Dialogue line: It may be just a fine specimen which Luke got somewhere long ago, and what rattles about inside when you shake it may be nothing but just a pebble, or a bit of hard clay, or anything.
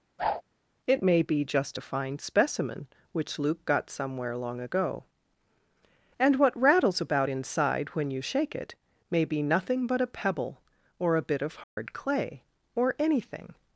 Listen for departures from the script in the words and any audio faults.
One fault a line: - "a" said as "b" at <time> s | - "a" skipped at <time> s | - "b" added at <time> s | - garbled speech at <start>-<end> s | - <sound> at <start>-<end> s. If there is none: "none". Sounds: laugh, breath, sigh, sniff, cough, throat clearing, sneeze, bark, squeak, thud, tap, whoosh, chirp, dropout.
- whoosh at 0.2-0.4 s
- "just" skipped at 10.0 s
- dropout at 11.6-11.8 s